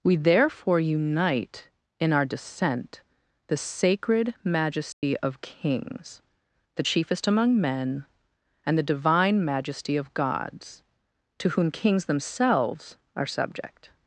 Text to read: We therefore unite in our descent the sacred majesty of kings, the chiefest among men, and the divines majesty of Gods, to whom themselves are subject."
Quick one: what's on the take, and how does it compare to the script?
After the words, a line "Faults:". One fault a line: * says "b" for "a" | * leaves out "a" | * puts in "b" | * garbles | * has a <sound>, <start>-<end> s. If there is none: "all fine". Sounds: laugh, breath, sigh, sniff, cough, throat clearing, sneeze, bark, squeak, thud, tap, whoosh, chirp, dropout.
We therefore unite in our descent the sacred majesty of kings, the chiefest among men, and the divine majesty of Gods, to whom kings themselves are subject."
Faults:
* has a dropout, 4.9-5.0 s
* says "divine" for "divines"
* puts in "kings"